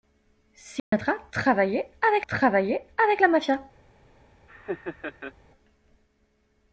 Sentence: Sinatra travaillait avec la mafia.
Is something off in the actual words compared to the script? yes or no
yes